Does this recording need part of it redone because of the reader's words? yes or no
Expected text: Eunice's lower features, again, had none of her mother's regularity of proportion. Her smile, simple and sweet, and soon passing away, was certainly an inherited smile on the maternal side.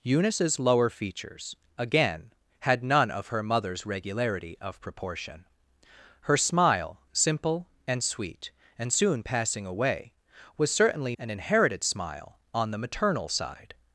no